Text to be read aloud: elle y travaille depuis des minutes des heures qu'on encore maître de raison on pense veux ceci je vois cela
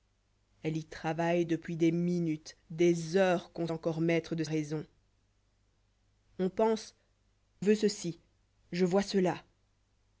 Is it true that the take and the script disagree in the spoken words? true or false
false